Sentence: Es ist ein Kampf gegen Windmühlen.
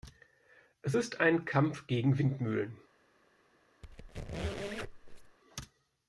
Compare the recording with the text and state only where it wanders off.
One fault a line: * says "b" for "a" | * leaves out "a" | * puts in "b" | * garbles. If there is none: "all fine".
all fine